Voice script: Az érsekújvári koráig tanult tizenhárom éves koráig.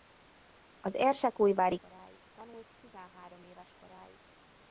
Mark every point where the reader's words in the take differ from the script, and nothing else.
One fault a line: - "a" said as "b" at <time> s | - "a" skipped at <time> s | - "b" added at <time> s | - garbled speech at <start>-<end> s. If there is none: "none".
none